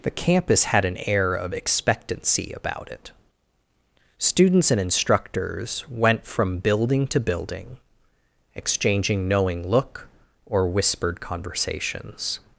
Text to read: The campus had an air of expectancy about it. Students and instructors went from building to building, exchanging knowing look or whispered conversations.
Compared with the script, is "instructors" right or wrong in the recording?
right